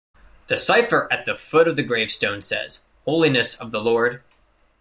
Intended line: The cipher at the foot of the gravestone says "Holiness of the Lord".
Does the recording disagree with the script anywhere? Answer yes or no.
no